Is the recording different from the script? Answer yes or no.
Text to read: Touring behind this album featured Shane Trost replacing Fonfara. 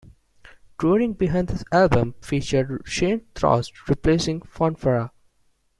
no